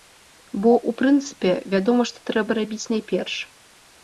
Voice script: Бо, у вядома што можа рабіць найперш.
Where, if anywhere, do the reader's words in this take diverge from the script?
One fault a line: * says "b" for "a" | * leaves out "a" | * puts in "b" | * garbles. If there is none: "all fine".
* puts in "прынцыпе"
* says "трэба" for "можа"